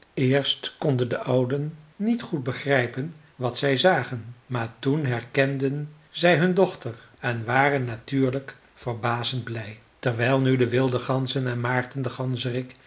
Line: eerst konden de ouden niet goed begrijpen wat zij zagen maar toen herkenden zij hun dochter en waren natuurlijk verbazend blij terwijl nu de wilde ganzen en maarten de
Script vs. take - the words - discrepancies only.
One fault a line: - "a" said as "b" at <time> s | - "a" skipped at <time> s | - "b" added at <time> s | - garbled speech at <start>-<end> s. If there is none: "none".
none